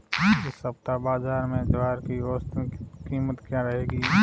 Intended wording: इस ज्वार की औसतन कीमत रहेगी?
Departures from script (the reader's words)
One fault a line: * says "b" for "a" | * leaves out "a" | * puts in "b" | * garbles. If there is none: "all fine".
* puts in "सप्ताह बाज़ार में"
* puts in "क्या"